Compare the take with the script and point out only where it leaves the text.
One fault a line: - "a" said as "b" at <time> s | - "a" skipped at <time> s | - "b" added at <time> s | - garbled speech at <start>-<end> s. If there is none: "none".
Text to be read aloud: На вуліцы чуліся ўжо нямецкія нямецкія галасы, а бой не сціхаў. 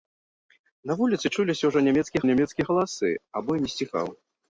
none